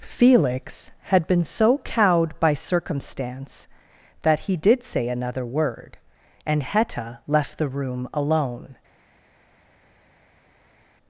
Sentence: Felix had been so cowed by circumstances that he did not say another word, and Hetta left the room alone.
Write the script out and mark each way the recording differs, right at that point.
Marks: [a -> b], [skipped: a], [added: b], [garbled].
Felix had been so cowed by [circumstances -> circumstance] that he did [skipped: not] say another word, and Hetta left the room alone.